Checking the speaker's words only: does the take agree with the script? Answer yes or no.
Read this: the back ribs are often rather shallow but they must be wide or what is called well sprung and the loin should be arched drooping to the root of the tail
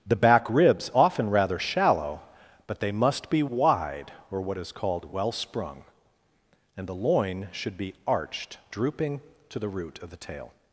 no